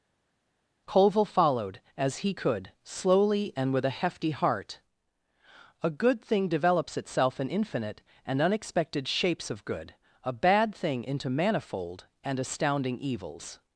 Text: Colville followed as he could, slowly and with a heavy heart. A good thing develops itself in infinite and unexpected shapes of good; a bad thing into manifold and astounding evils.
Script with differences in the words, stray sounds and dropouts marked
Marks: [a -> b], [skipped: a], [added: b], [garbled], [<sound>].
Colville followed as he could, slowly and with a [heavy -> hefty] heart. A good thing develops itself in infinite and unexpected shapes of good; a bad thing into manifold and astounding evils.